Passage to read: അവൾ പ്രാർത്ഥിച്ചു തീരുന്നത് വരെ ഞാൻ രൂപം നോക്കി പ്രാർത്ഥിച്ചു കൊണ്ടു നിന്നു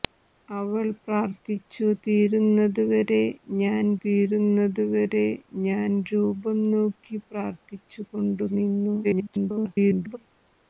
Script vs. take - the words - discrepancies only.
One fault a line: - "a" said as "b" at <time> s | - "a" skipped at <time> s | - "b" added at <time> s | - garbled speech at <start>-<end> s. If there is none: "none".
- "തീരുന്നത് വരെ ഞാൻ" added at 4.0 s
- garbled speech at 9.0-10.2 s